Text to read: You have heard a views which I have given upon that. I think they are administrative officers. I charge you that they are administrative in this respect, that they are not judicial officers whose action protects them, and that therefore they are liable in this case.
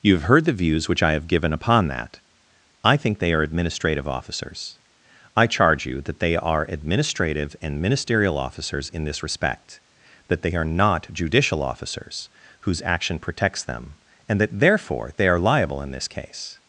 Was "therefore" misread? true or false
false